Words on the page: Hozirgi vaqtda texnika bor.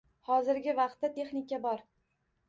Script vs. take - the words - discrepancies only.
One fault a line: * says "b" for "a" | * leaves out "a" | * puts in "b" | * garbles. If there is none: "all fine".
all fine